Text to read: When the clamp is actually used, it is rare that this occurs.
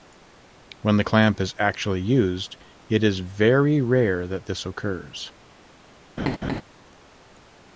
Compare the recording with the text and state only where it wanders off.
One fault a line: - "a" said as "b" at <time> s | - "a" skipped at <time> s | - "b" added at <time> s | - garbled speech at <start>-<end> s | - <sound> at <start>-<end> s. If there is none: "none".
- "very" added at 3.2 s
- laugh at 6.2-6.6 s